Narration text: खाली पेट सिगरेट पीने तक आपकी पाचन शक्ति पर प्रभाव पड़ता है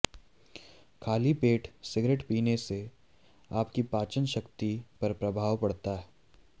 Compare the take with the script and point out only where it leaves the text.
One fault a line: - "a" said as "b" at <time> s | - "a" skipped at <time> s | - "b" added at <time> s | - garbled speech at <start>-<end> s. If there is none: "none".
- "तक" said as "से" at 2.6 s